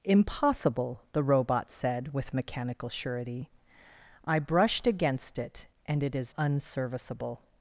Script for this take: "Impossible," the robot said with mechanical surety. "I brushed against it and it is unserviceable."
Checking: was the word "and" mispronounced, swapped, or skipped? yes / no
no